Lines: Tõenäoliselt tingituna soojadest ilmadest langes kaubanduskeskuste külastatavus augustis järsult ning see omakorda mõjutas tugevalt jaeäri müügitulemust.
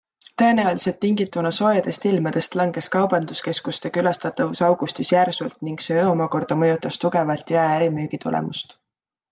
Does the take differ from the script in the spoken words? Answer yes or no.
no